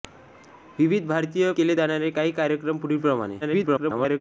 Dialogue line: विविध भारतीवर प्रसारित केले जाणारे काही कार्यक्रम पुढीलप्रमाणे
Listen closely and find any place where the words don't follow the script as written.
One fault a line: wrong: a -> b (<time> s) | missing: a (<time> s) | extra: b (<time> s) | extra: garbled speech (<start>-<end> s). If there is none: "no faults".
missing: प्रसारित (1.5 s)
extra: garbled speech (3.4-4.2 s)